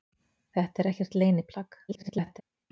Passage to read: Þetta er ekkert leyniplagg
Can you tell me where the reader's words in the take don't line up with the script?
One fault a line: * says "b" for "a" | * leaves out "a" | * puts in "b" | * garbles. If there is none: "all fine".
* garbles